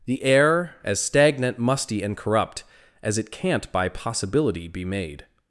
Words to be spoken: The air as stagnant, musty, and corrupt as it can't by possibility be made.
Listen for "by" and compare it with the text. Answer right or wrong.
right